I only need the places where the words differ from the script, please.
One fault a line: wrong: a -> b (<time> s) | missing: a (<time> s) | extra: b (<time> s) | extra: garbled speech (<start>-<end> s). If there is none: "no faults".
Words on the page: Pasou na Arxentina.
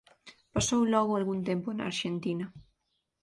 extra: logo algún tempo (0.9 s)